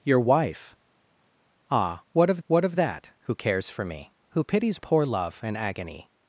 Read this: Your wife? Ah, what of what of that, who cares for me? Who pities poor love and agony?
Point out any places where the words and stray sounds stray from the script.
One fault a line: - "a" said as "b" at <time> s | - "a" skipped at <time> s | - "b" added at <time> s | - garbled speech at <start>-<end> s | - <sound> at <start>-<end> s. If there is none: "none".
none